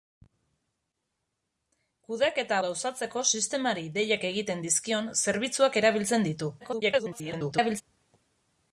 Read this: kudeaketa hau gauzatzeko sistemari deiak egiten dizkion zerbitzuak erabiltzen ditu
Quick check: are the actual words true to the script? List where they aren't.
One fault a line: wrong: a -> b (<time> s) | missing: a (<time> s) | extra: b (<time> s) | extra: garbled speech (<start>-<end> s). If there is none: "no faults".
missing: hau (2.6 s)
extra: garbled speech (6.6-7.8 s)